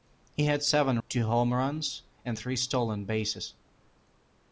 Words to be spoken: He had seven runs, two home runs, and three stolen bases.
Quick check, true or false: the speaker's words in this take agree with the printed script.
false